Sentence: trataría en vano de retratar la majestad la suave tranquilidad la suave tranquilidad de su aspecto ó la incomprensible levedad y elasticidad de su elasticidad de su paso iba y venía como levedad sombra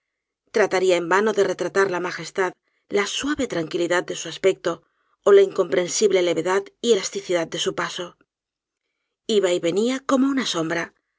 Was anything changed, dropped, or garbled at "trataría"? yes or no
no